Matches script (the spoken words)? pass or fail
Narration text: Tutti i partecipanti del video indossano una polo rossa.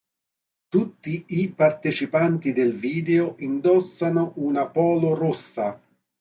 pass